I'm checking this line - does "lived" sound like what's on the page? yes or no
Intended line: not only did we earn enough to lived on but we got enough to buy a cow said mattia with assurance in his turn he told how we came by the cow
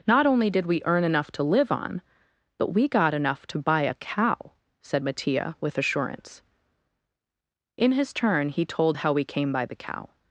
no